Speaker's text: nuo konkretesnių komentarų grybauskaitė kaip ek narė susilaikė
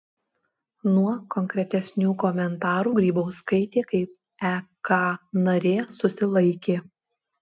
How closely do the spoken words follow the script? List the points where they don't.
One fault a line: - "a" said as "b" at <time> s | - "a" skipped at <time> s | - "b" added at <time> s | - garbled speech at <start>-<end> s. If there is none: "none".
none